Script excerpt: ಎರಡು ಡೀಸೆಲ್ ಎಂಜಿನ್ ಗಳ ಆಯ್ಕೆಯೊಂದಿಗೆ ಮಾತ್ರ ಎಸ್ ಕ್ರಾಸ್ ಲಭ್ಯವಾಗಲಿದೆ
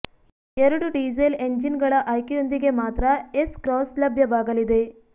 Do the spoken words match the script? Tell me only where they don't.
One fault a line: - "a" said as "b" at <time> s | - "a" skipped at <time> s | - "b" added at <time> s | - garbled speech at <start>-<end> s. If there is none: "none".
none